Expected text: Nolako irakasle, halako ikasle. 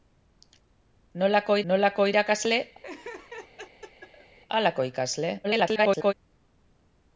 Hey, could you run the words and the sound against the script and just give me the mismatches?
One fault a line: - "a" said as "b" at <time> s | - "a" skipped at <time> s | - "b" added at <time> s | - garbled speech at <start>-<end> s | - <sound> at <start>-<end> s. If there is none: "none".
- "nolako" added at 1.7 s
- laugh at 2.8-4.4 s
- garbled speech at 5.4-6.1 s